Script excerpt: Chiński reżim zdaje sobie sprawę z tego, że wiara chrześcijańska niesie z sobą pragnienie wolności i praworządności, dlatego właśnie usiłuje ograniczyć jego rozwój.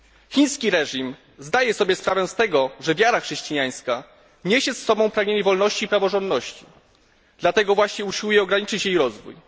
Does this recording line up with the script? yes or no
no